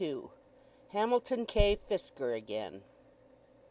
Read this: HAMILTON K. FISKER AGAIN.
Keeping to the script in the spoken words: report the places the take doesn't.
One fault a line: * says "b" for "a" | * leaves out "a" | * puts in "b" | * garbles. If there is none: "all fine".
all fine